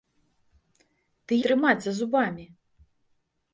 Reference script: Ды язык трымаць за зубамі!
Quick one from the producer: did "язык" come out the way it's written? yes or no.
no